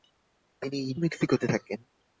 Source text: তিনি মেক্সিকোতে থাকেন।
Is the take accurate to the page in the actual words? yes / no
yes